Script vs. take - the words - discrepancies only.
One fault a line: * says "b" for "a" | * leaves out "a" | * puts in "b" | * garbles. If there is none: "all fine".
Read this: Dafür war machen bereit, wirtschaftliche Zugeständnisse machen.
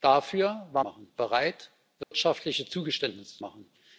all fine